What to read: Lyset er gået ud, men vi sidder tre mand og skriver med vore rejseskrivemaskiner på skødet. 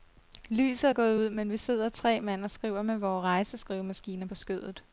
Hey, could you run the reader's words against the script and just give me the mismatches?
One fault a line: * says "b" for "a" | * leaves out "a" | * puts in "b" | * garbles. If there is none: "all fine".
all fine